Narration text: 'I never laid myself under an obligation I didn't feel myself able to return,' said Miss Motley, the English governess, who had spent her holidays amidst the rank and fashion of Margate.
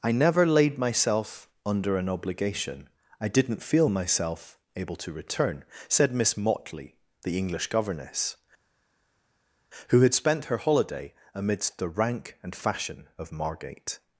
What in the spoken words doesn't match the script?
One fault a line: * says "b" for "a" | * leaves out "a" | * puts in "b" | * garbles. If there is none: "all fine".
* says "holiday" for "holidays"